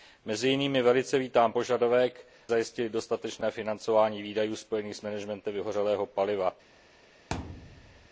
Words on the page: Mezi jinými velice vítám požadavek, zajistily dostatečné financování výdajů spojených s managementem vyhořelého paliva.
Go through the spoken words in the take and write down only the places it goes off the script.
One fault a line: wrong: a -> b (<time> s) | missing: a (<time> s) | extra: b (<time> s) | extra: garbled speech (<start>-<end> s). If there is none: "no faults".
no faults